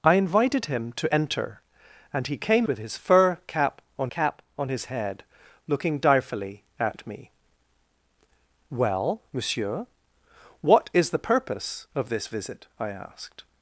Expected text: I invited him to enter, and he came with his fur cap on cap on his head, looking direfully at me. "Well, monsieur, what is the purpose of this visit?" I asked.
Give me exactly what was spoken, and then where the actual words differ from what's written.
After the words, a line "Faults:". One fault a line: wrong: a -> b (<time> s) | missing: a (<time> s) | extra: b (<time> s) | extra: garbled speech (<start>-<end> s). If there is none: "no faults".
I invited him to enter, and he came with his fur cap on cap on his head, looking direfully at me. "Well, monsieur, what is the purpose of this visit?" I asked.
Faults:
no faults